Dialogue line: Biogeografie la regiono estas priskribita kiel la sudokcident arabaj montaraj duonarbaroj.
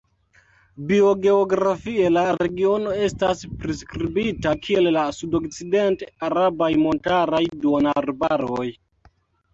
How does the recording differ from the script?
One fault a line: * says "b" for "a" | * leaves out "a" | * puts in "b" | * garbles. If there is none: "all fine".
all fine